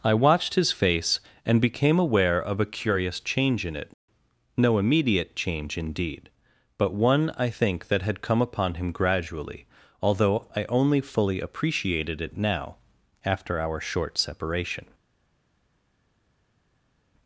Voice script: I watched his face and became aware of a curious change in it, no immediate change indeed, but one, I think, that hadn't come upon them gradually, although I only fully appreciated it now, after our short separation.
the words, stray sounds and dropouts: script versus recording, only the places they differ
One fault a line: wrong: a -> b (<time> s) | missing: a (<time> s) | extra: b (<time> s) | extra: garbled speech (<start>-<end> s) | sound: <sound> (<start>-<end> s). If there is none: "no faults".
wrong: hadn't -> had (8.0 s)
wrong: them -> him (8.7 s)